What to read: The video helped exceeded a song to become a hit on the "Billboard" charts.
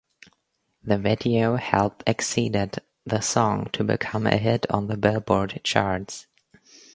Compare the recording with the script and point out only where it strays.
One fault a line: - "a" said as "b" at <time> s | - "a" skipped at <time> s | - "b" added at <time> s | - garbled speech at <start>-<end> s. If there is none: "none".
- "a" said as "the" at 3.0 s